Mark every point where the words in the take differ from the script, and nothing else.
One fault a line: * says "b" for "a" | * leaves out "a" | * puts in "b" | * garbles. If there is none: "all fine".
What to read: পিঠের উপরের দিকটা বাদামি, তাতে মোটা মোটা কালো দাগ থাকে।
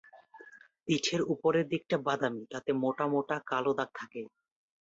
all fine